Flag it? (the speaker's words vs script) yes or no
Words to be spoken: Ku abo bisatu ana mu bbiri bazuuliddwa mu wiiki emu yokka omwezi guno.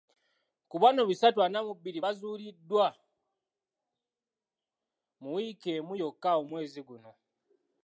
yes